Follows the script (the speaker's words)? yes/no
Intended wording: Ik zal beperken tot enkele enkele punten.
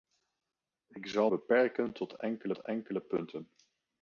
yes